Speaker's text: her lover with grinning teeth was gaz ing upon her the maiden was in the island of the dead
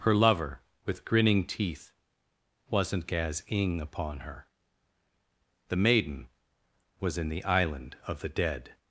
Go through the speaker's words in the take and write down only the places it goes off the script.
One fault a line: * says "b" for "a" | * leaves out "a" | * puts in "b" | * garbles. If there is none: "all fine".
* says "wasn't" for "was"